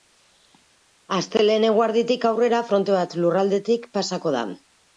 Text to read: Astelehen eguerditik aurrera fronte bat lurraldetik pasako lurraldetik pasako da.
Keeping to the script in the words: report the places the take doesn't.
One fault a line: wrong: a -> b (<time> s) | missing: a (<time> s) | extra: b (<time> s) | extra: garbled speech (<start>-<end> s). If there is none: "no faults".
missing: lurraldetik pasako (4.4 s)